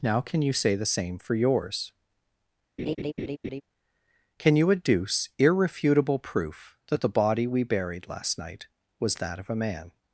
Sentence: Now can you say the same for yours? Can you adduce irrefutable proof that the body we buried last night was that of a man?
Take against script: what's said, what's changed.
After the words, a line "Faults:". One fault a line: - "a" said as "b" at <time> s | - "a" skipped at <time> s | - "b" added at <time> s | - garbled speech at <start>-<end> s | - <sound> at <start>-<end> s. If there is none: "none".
Now can you say the same for yours? Can you adduce irrefutable proof that the body we buried last night was that of a man?
Faults:
- laugh at 2.8-3.6 s